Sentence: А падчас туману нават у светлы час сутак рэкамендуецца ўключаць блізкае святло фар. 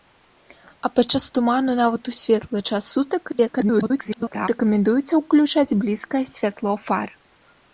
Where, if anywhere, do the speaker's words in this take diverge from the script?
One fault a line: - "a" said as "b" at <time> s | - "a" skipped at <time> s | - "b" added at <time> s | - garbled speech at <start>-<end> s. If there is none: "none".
- garbled speech at 3.3-4.5 s